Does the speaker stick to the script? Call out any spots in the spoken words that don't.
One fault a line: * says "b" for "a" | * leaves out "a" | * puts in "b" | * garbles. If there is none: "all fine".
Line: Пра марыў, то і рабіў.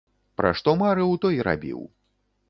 * puts in "што"